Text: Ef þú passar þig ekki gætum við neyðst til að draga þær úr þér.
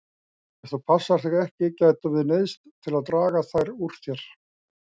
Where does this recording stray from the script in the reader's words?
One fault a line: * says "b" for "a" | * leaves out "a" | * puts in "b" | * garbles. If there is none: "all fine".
all fine